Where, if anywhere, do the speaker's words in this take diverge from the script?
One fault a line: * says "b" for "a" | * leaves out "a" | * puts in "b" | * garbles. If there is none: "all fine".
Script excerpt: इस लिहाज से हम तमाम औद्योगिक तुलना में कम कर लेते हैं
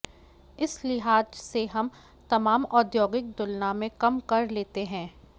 all fine